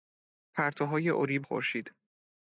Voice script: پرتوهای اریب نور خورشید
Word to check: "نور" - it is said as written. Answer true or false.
false